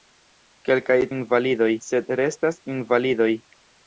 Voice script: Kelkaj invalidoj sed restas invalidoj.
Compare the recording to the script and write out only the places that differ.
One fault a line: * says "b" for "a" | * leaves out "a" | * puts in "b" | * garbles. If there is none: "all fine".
all fine